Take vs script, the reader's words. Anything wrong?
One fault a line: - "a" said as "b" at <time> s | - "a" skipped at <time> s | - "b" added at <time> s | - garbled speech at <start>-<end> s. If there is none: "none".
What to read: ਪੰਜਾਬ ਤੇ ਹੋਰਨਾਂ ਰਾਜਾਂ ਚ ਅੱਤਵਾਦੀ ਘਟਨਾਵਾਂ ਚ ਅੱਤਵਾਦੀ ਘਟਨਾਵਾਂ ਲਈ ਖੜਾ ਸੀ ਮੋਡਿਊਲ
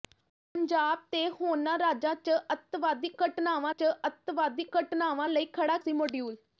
none